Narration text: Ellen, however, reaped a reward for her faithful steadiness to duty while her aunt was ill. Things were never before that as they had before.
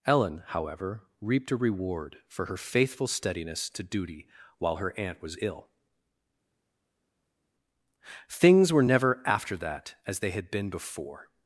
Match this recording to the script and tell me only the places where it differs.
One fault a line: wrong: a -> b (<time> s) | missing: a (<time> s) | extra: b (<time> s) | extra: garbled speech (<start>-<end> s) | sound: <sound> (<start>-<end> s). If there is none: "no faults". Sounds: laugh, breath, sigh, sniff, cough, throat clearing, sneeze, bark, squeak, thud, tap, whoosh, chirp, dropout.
wrong: before -> after (9.2 s)
extra: been (10.5 s)